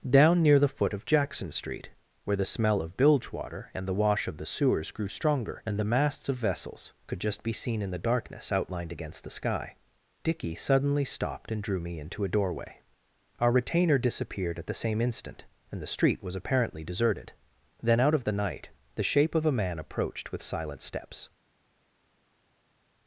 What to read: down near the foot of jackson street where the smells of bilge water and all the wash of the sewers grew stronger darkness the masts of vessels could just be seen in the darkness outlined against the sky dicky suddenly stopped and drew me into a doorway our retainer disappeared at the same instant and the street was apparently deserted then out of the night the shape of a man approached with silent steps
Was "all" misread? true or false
true